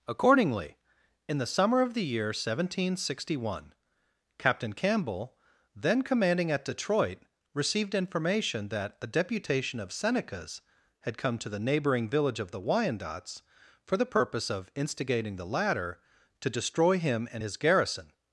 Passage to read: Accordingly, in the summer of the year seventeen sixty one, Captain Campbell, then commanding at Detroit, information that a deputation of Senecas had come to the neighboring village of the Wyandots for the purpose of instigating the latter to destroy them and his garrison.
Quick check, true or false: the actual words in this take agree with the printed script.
false